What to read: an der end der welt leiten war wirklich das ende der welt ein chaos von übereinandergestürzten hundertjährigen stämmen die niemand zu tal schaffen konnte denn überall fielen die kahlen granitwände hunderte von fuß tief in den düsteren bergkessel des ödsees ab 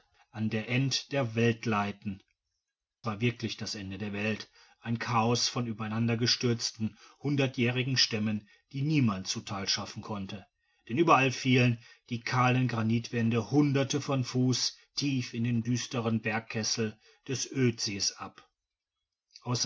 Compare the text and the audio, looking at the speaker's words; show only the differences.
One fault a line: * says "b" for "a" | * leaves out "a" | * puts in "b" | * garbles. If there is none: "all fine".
all fine